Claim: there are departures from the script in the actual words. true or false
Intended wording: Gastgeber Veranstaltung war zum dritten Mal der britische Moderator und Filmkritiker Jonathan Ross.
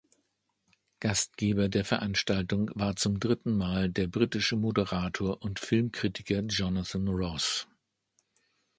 true